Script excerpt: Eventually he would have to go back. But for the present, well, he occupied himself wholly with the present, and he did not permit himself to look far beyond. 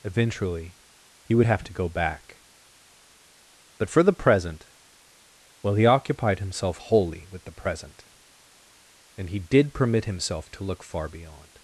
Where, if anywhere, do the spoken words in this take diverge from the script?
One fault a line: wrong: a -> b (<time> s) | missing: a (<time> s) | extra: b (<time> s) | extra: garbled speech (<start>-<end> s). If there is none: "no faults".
missing: not (9.7 s)